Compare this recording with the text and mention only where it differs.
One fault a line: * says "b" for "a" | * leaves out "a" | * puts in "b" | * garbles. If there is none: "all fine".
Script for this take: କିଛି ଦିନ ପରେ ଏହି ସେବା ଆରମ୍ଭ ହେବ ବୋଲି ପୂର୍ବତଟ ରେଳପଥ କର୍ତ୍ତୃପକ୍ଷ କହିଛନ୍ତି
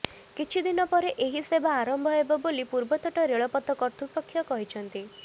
all fine